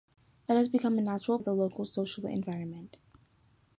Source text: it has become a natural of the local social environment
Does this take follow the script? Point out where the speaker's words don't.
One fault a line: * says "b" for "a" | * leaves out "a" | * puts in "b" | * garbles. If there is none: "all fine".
all fine